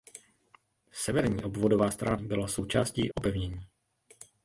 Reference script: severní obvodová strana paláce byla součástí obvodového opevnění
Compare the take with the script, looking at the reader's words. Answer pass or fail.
fail